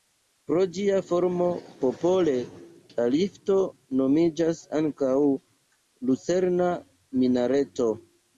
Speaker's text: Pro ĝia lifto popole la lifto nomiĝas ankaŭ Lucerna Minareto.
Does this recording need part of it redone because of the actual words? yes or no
yes